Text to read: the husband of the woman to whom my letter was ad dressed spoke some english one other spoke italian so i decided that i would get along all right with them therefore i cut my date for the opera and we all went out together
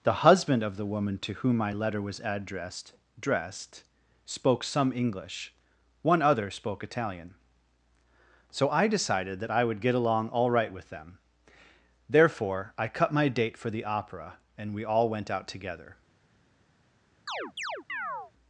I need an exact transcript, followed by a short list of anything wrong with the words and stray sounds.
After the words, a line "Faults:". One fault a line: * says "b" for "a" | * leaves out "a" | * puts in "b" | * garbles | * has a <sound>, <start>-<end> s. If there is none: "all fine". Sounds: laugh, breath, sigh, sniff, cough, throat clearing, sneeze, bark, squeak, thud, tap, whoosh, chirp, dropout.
the husband of the woman to whom my letter was addressed dressed spoke some english one other spoke italian so i decided that i would get along all right with them therefore i cut my date for the opera and we all went out together
Faults:
* says "addressed" for "ad"
* has a chirp, 17.3-18.3 s